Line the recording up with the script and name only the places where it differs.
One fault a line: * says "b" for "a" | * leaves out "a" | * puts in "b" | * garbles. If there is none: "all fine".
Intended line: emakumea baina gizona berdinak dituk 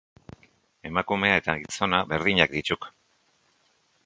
* says "eta" for "baina"